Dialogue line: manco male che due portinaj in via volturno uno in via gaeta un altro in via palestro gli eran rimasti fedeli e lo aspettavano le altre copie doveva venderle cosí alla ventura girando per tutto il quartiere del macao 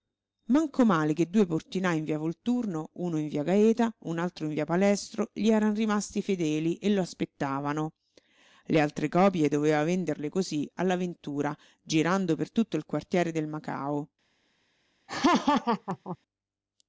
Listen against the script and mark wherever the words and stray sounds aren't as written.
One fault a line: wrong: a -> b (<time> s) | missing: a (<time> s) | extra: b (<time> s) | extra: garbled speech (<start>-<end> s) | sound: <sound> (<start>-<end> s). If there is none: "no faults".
sound: laugh (15.1-16.2 s)